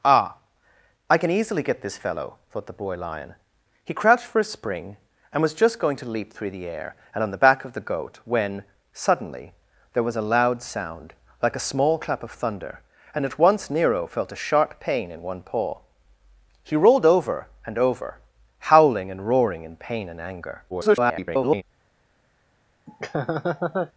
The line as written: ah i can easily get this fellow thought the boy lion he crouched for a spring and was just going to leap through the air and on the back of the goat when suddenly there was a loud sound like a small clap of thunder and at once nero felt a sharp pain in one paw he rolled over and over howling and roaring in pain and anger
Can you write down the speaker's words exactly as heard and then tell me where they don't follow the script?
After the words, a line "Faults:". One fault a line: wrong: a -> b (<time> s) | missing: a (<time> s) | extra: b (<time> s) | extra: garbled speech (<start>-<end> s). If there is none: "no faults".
ah i can easily get this fellow thought the boy lion he crouched for a spring and was just going to leap through the air and on the back of the goat when suddenly there was a loud sound like a small clap of thunder and at once nero felt a sharp pain in one paw he rolled over and over howling and roaring in pain and anger [garbled]
Faults:
extra: garbled speech (20.7-21.6 s)